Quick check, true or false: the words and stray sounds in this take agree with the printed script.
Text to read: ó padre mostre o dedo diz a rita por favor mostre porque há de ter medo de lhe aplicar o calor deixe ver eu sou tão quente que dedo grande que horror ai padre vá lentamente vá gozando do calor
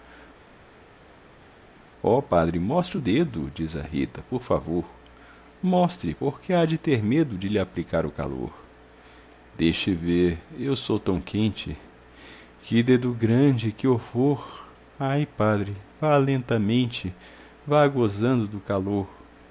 true